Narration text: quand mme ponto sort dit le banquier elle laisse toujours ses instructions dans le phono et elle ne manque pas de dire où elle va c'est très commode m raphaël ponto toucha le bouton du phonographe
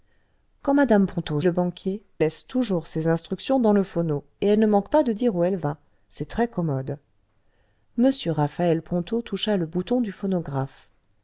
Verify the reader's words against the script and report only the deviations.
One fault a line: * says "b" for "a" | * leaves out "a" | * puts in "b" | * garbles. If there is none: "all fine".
* leaves out "sort dit"
* leaves out "elle"